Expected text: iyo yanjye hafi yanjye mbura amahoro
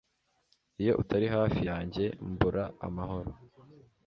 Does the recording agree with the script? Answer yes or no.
no